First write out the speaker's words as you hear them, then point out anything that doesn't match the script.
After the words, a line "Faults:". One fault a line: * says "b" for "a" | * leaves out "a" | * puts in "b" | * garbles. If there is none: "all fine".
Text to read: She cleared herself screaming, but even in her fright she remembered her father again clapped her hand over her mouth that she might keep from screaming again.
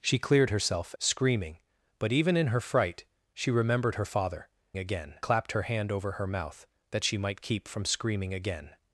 She cleared herself screaming, but even in her fright she remembered her father again clapped her hand over her mouth that she might keep from screaming again.
Faults:
all fine